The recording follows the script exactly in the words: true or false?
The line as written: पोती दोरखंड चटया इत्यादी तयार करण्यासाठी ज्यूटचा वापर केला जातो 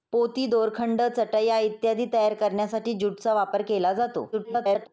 false